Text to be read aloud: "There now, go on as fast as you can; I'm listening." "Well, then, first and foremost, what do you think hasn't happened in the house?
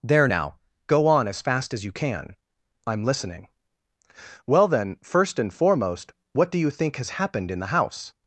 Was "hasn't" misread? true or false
true